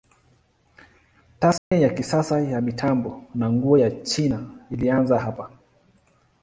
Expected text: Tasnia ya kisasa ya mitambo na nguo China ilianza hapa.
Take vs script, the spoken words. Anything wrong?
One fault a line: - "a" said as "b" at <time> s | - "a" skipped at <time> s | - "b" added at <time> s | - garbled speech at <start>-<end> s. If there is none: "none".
- "ya" added at 3.7 s